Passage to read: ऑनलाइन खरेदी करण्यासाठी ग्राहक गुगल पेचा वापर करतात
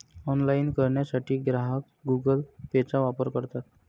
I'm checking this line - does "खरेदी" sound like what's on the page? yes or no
no